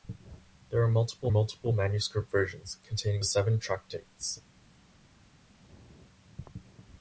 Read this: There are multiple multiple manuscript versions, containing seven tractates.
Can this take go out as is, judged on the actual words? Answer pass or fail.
pass